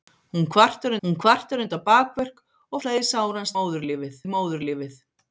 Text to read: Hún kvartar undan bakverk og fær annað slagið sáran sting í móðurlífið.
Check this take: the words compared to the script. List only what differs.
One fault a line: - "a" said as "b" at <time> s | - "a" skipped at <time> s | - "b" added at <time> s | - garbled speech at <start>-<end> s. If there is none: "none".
- "hún kvartar" added at 1.0 s
- "fær annað" skipped at 2.8 s
- "sting" said as "móðurlífið" at 3.6 s